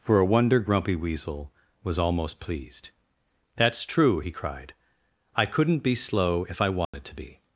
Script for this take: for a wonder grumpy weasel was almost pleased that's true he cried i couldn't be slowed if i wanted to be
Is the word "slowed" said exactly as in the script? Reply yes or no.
no